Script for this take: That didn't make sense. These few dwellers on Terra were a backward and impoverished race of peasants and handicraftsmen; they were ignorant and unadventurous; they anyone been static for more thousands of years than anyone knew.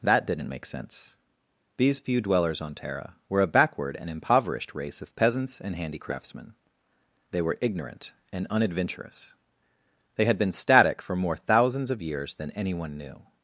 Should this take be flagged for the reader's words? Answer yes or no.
yes